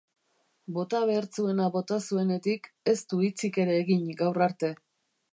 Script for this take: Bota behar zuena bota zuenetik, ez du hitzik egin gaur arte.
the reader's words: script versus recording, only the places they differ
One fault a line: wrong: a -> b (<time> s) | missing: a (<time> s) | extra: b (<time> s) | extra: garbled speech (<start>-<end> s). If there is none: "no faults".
extra: ere (3.6 s)